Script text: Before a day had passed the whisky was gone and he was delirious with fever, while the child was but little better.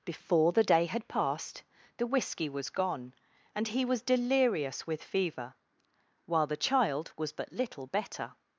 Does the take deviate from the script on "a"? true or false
true